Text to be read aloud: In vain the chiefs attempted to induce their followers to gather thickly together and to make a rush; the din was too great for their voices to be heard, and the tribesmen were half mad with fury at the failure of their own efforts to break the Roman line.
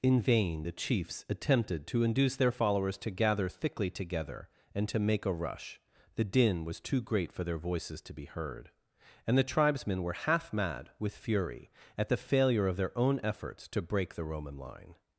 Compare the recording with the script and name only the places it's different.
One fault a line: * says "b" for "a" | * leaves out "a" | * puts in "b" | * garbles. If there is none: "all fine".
all fine